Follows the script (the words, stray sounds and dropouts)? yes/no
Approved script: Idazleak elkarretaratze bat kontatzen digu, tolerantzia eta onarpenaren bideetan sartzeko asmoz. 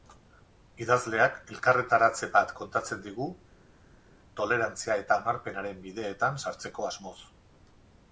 yes